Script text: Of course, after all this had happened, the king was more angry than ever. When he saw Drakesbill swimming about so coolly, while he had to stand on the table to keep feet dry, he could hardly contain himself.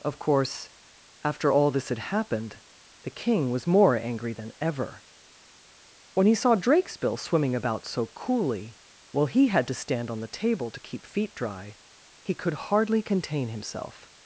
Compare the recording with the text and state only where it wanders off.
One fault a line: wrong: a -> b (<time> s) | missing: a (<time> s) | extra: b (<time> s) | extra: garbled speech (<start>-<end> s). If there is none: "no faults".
no faults